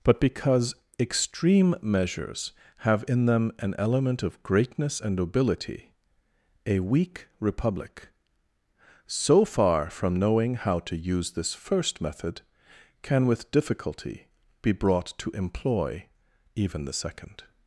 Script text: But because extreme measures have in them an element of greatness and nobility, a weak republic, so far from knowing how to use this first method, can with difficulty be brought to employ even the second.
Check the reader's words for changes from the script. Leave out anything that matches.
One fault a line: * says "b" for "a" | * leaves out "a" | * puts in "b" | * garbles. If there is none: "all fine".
all fine